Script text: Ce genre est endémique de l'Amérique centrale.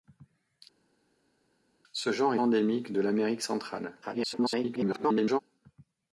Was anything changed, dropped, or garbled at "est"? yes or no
yes